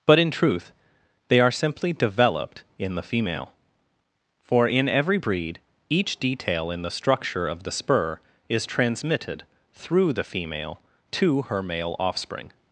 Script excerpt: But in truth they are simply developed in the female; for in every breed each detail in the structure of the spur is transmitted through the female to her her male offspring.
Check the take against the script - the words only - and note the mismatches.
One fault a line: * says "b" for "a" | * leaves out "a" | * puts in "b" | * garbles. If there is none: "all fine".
* leaves out "her"